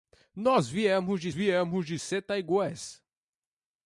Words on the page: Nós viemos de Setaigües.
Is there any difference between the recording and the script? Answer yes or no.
yes